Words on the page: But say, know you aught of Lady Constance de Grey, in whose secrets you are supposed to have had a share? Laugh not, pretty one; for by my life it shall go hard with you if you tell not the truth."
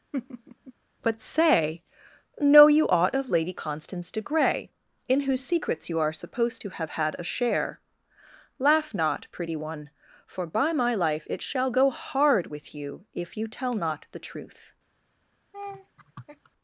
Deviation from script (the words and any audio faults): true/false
true